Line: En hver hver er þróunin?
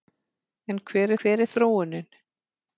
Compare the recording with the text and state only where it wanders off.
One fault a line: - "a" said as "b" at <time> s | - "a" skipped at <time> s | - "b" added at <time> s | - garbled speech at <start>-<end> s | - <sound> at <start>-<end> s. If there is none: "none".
none